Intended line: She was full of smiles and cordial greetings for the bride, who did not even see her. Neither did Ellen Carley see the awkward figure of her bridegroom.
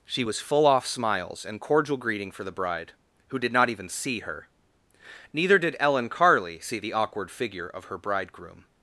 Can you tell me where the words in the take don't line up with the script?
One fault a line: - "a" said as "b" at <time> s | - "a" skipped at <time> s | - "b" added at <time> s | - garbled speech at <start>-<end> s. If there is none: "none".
- "of" said as "off" at 0.6 s
- "greetings" said as "greeting" at 2.0 s